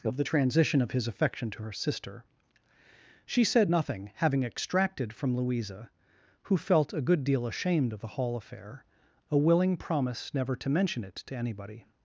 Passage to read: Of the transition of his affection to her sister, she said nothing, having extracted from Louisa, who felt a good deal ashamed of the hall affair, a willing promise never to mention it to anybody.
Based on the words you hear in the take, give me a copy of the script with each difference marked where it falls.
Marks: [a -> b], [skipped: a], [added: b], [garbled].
Of the transition of his affection to her sister, she said nothing, having extracted from Louisa, who felt a good deal ashamed of the hall affair, a willing promise never to mention it to anybody.